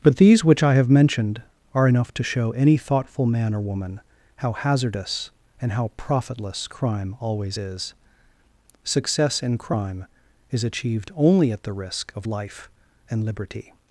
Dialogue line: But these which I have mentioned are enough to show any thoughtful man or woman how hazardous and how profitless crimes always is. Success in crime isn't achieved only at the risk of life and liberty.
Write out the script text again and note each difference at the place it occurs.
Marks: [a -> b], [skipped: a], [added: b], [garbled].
But these which I have mentioned are enough to show any thoughtful man or woman how hazardous and how profitless [crimes -> crime] always is. Success in crime [isn't -> is] achieved only at the risk of life and liberty.